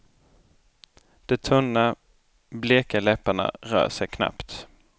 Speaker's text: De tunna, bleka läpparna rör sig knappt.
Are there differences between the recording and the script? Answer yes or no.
no